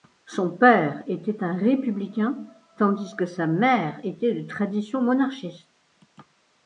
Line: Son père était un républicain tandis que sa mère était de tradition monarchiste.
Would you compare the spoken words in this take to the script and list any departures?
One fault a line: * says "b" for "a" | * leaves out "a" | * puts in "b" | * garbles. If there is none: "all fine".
all fine